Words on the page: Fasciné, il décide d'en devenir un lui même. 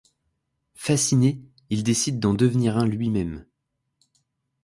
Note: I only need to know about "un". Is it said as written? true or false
true